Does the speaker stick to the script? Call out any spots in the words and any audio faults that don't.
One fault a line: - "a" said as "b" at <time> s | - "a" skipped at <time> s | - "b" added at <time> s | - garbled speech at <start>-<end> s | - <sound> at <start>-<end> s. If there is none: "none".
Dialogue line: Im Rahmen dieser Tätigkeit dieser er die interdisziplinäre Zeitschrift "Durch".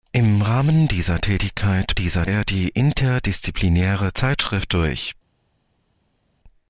none